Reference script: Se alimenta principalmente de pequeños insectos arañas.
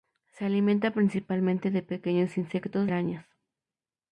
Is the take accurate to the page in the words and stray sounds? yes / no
yes